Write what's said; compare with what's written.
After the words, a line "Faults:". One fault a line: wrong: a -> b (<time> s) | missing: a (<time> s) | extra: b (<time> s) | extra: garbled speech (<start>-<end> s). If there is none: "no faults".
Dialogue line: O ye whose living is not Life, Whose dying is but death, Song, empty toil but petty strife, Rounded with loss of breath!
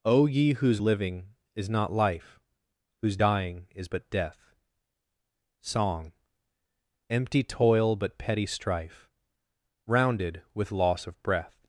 O ye whose living is not Life, Whose dying is but death, Song, empty toil but petty strife, Rounded with loss of breath!
Faults:
no faults